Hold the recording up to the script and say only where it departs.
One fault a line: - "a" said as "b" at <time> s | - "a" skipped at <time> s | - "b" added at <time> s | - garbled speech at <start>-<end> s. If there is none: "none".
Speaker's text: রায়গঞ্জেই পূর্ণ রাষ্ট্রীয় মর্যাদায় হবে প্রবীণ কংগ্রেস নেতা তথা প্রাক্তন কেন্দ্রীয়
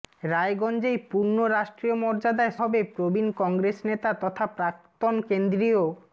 none